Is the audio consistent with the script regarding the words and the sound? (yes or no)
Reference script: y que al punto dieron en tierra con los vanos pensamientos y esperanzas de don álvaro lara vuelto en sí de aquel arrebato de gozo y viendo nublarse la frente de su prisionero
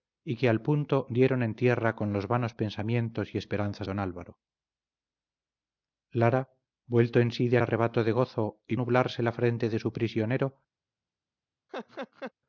no